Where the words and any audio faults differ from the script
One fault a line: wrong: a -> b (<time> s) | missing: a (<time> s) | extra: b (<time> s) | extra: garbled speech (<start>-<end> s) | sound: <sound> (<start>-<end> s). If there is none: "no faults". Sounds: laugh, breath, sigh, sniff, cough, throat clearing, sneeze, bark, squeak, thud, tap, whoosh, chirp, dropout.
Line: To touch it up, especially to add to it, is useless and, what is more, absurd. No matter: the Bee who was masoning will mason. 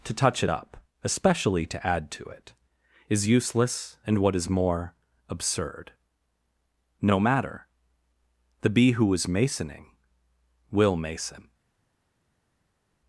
wrong: was -> is (9.1 s)